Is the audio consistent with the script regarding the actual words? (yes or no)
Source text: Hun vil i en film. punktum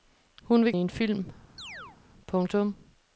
yes